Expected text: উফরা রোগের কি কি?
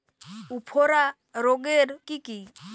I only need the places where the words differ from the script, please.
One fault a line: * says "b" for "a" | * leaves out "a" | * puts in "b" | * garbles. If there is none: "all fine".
all fine